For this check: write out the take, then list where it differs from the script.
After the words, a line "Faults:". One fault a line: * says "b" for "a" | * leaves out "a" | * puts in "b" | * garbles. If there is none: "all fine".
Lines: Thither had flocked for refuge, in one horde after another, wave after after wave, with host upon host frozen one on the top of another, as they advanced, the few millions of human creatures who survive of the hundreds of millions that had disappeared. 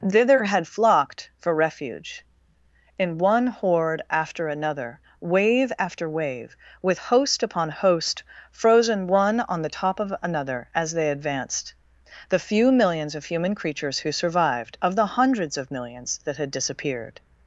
Thither had flocked for refuge, in one horde after another, wave after wave, with host upon host frozen one on the top of another, as they advanced, the few millions of human creatures who survived of the hundreds of millions that had disappeared.
Faults:
* leaves out "after"
* says "survived" for "survive"